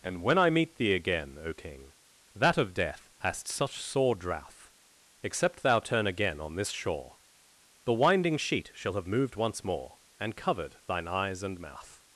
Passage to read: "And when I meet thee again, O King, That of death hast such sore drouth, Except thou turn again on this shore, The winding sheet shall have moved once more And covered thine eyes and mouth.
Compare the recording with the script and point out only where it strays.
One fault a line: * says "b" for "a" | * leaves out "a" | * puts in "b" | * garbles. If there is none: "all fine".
all fine